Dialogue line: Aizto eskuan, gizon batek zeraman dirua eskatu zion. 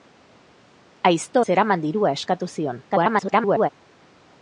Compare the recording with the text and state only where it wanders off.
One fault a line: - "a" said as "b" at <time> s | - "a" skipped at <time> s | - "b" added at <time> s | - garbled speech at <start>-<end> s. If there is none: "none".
- "eskuan gizon batek" skipped at 1.4 s
- garbled speech at 2.9-3.7 s